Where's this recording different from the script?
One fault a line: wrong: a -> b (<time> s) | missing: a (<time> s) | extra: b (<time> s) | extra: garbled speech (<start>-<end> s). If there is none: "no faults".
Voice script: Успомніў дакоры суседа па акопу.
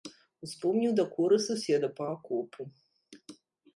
no faults